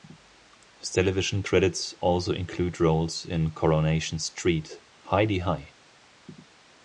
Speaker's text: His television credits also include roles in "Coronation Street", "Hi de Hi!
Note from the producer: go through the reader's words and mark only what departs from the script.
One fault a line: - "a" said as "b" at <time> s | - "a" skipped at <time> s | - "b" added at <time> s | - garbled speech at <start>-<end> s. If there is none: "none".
none